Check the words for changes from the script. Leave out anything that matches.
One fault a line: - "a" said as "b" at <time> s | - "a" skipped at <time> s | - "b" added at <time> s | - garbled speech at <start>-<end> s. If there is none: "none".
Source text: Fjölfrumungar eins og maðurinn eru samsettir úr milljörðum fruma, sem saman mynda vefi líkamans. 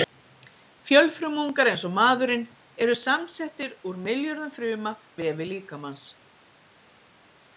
- "sem saman mynda" skipped at 5.0 s